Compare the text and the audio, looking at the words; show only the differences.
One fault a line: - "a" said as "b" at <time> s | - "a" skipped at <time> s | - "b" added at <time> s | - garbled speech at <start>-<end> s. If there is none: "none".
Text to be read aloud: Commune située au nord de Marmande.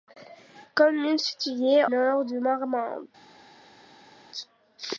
- "au" skipped at 1.9 s